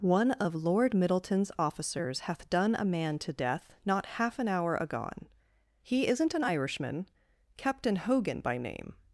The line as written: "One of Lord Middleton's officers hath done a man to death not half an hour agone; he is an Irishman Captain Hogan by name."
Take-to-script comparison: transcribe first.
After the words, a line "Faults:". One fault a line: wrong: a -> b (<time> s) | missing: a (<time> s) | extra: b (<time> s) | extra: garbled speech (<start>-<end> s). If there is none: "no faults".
"One of Lord Middleton's officers hath done a man to death not half an hour agone; he isn't an Irishman Captain Hogan by name."
Faults:
wrong: is -> isn't (6.1 s)